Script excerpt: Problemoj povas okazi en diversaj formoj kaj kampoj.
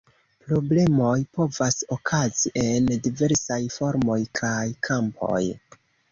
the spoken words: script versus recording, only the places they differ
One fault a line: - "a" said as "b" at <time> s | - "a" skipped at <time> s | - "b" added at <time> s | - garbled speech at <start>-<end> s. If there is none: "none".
none